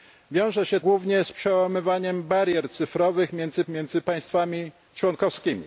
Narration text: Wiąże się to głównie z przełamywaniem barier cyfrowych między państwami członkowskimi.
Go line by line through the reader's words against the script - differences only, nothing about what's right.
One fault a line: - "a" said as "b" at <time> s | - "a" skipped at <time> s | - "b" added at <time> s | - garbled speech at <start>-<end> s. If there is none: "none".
- "to" skipped at 0.8 s
- "między" added at 3.7 s